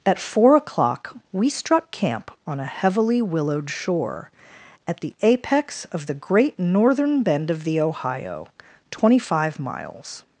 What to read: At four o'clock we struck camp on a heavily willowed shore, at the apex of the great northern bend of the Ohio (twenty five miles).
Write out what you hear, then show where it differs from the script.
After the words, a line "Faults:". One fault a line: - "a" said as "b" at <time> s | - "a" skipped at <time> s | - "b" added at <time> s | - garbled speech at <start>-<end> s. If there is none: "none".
At four o'clock we struck camp on a heavily willowed shore, at the apex of the great northern bend of the Ohio (twenty five miles).
Faults:
none